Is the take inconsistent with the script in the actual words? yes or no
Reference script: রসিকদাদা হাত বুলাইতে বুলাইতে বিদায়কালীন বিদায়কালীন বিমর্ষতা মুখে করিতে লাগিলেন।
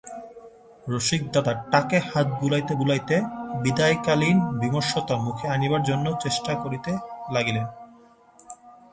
yes